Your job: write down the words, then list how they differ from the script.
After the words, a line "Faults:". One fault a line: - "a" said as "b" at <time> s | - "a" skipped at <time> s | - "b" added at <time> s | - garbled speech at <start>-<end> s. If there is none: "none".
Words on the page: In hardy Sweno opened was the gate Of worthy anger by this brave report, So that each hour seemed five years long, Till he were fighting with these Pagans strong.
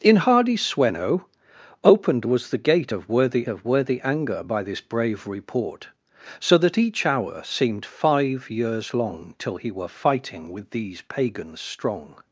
In hardy Sweno opened was the gate Of worthy Of worthy anger by this brave report, So that each hour seemed five years long, Till he were fighting with these Pagans strong.
Faults:
- "Of worthy" added at 3.5 s